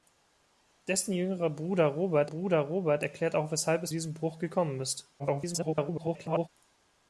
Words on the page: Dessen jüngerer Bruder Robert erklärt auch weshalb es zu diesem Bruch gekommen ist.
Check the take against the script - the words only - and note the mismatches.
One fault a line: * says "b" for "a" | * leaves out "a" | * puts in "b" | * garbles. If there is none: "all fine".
* puts in "Bruder Robert"
* leaves out "zu"
* garbles